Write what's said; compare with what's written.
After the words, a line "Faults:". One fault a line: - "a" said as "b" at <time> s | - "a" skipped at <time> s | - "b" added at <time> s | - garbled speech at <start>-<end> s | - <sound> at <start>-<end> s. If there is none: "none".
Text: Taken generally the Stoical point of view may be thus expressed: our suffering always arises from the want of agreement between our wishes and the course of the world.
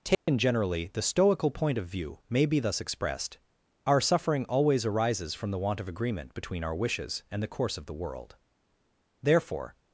Taken generally the Stoical point of view may be thus expressed: our suffering always arises from the want of agreement between our wishes and the course of the world. Therefore
Faults:
- dropout at 0.1-0.3 s
- "Therefore" added at 9.2 s